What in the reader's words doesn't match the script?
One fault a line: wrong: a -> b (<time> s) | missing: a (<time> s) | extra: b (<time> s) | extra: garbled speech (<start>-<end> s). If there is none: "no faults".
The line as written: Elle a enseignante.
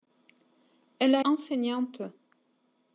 no faults